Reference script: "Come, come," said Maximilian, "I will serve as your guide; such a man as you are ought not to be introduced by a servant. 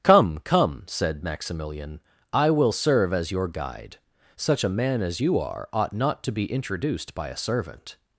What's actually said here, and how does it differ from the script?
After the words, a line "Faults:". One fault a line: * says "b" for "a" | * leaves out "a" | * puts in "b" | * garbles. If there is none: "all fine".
"Come, come," said Maximilian, "I will serve as your guide; such a man as you are ought not to be introduced by a servant.
Faults:
all fine